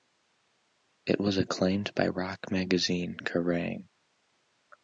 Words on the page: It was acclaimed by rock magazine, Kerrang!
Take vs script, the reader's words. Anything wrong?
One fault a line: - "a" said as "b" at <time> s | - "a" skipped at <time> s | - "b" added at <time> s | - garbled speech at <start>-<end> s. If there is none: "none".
none